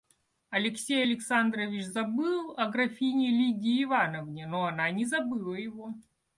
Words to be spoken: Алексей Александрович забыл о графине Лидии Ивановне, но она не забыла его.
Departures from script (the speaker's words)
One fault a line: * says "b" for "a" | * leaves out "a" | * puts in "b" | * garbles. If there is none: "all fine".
all fine